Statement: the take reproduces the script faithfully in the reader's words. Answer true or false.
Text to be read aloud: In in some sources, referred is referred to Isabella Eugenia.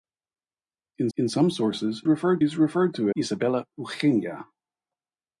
true